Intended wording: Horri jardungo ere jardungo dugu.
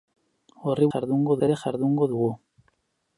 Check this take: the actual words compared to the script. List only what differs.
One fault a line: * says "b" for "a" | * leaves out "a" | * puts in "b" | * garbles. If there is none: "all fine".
all fine